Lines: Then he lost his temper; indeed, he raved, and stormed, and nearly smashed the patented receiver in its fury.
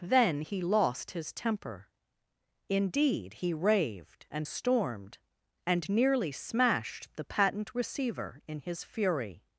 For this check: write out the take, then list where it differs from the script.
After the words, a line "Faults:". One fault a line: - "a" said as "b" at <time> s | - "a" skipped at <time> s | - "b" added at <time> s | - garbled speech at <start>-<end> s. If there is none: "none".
Then he lost his temper; indeed, he raved, and stormed, and nearly smashed the patent receiver in his fury.
Faults:
- "patented" said as "patent" at 7.2 s
- "its" said as "his" at 8.6 s